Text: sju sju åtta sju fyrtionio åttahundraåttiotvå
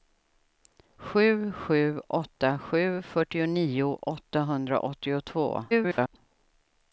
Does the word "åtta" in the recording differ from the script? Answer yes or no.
no